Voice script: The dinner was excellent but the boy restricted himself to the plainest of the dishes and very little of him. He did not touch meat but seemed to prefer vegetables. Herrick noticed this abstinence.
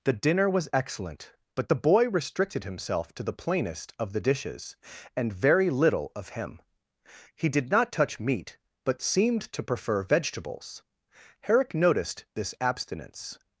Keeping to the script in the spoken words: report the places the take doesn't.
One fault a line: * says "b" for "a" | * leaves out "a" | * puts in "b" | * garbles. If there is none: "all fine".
all fine